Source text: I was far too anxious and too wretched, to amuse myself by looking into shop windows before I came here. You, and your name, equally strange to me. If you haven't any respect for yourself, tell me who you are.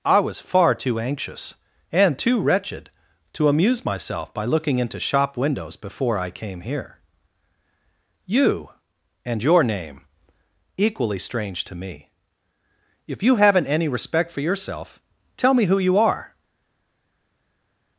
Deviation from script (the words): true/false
false